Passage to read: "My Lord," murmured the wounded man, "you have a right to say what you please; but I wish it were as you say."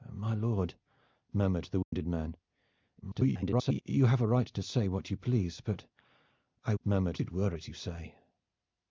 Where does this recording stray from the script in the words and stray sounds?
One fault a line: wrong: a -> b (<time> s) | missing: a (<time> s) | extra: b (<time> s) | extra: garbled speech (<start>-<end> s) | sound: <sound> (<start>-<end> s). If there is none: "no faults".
sound: dropout (1.8-1.9 s)
extra: garbled speech (3.0-3.8 s)
wrong: wish -> murmured (6.8 s)